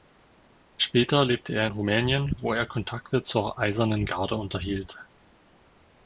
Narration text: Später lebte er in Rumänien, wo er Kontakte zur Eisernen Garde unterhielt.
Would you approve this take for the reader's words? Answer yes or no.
yes